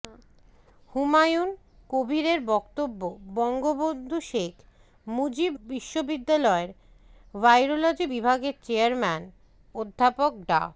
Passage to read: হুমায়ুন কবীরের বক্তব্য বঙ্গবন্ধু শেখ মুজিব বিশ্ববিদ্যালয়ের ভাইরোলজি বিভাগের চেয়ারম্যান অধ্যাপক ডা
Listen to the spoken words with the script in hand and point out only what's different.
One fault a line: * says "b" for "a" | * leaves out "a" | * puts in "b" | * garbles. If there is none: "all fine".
all fine